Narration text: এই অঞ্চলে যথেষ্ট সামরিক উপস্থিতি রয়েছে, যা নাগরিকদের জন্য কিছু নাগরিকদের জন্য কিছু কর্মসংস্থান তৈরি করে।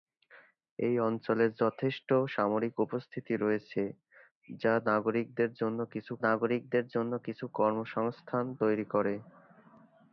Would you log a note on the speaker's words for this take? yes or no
no